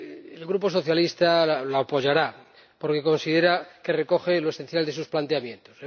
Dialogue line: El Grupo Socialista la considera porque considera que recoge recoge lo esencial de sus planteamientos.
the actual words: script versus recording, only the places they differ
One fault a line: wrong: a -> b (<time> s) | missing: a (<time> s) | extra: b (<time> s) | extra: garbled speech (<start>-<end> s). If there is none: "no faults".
wrong: considera -> apoyará (1.8 s)
missing: recoge (4.4 s)